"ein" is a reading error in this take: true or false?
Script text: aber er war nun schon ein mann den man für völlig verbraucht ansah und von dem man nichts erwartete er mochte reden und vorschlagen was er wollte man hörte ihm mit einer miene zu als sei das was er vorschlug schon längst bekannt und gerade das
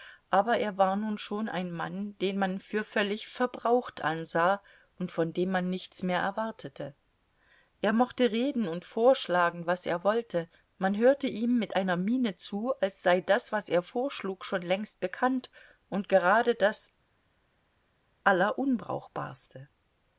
false